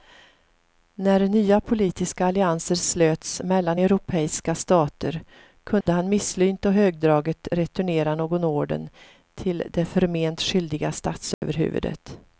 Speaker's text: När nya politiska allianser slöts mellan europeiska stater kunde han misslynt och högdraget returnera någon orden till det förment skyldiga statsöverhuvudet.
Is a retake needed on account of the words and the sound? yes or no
yes